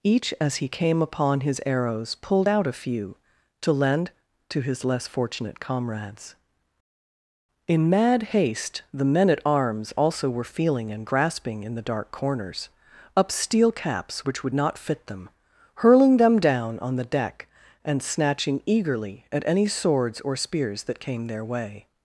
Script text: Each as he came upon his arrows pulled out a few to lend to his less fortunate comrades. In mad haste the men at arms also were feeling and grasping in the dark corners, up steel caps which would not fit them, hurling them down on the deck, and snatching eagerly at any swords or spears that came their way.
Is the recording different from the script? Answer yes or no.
no